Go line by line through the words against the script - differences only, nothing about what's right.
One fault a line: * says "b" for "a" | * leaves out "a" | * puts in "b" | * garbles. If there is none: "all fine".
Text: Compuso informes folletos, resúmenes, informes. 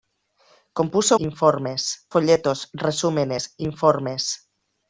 all fine